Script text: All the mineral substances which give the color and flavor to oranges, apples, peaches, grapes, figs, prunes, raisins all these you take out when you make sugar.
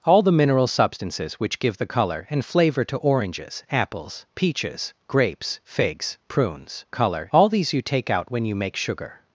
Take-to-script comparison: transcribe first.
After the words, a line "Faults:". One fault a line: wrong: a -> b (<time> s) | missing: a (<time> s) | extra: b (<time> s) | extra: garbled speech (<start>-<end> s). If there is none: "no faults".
All the mineral substances which give the color and flavor to oranges, apples, peaches, grapes, figs, prunes, color all these you take out when you make sugar.
Faults:
wrong: raisins -> color (6.9 s)